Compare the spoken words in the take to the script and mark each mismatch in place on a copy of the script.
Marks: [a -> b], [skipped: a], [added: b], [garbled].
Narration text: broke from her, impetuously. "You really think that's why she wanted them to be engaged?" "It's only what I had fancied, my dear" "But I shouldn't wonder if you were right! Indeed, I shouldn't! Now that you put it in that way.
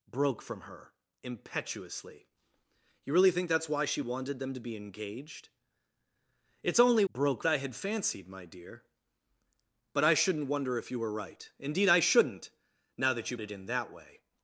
broke from her, impetuously. "You really think that's why she wanted them to be engaged?" "It's only [what -> broke] I had fancied, my dear" "But I shouldn't wonder if you were right! Indeed, I shouldn't! Now that you [skipped: put] it in that way.